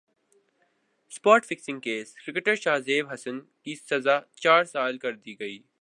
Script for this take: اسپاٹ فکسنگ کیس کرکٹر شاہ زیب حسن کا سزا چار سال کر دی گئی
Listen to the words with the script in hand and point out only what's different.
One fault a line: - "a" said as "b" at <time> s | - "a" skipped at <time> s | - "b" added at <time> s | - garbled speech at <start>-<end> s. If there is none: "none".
- "کا" said as "کی" at 3.4 s